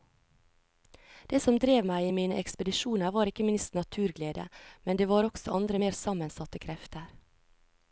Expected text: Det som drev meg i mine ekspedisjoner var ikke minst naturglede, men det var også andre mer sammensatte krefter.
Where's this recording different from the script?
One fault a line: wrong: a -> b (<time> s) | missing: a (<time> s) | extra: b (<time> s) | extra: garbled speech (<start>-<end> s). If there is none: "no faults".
no faults